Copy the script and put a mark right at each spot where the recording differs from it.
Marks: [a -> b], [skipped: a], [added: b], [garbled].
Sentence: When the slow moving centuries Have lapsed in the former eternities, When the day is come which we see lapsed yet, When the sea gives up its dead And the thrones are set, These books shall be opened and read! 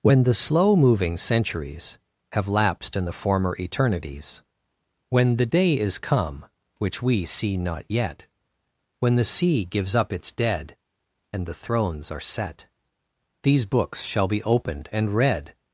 When the slow moving centuries Have lapsed in the former eternities, When the day is come which we see [lapsed -> not] yet, When the sea gives up its dead And the thrones are set, These books shall be opened and read!